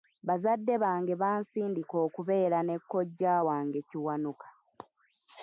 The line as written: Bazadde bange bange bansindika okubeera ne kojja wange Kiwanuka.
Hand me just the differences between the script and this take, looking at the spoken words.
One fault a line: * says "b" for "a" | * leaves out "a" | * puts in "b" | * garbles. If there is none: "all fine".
* leaves out "bange"